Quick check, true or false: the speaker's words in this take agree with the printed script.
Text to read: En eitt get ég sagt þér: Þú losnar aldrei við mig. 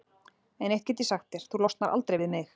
true